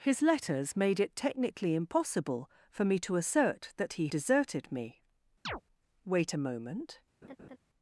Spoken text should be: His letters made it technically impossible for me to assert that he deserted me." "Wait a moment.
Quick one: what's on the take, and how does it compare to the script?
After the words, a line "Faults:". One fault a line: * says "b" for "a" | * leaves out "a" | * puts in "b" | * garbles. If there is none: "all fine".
His letters made it technically impossible for me to assert that he deserted me." "Wait a moment.
Faults:
all fine